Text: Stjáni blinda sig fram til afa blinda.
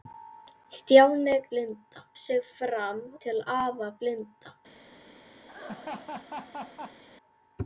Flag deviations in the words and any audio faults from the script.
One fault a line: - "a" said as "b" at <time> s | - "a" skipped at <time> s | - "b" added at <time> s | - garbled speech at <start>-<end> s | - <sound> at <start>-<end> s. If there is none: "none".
- laugh at 5.5-7.0 s